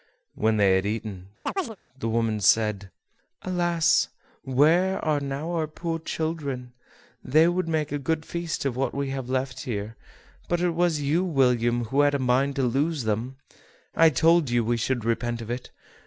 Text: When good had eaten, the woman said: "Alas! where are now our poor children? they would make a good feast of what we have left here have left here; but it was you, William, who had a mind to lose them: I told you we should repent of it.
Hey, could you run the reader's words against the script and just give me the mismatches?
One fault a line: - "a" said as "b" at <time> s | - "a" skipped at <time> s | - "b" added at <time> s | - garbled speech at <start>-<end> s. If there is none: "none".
- "good" said as "they" at 0.6 s
- "have left here" skipped at 10.0 s